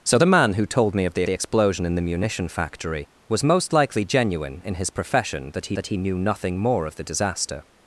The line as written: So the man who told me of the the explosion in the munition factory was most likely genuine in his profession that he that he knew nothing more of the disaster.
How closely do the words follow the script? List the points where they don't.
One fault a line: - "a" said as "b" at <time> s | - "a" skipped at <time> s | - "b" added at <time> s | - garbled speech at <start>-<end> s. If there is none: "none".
none